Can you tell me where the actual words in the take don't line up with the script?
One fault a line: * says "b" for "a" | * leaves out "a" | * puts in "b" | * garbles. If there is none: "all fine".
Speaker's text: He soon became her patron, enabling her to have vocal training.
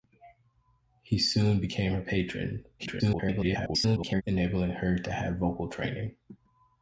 * garbles